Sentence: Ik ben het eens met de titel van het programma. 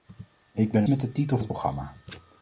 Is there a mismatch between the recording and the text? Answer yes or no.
yes